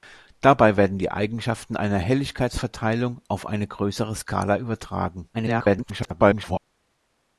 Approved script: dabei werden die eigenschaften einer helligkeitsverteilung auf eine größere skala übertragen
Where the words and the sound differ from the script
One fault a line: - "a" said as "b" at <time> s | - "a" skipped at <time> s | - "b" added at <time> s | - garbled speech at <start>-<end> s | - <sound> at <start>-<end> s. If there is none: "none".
- garbled speech at 5.3-6.6 s